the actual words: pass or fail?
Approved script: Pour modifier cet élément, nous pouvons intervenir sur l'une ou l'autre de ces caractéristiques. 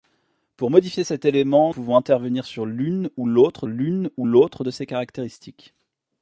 fail